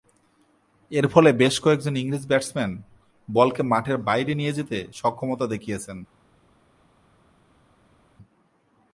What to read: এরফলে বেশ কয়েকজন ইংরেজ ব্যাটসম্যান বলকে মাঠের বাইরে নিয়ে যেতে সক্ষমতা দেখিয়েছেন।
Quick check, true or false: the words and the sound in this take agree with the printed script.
true